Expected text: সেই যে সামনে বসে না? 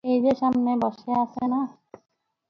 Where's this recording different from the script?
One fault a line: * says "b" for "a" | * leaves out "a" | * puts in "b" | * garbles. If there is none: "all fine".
* says "এই" for "সেই"
* puts in "আছে"